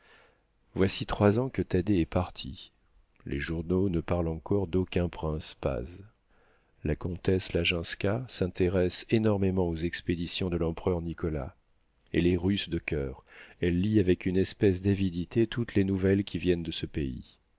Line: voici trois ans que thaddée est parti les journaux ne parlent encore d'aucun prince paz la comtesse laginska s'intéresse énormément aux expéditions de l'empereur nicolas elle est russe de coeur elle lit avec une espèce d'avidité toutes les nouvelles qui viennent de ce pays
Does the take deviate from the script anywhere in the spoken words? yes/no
no